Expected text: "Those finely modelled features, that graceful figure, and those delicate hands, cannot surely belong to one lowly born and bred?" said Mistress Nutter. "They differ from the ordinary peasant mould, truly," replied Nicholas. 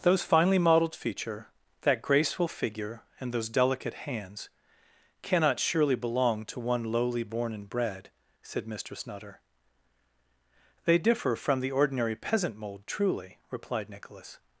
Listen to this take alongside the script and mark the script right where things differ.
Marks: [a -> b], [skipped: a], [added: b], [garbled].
"Those finely modelled [features, -> feature] that graceful figure, and those delicate hands, cannot surely belong to one lowly born and bred?" said Mistress Nutter. "They differ from the ordinary peasant mould, truly," replied Nicholas.